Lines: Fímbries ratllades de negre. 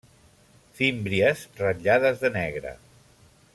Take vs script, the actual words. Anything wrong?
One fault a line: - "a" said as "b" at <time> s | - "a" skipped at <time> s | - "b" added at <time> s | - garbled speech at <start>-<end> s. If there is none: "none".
none